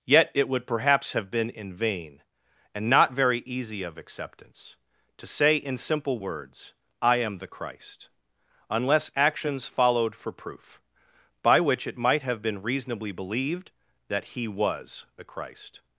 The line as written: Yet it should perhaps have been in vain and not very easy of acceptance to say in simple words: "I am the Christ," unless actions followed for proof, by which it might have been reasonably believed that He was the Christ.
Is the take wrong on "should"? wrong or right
wrong